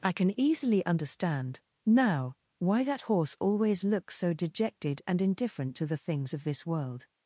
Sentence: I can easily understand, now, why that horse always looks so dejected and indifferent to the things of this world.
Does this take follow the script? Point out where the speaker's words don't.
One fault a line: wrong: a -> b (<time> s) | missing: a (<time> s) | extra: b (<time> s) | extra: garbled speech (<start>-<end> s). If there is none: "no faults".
no faults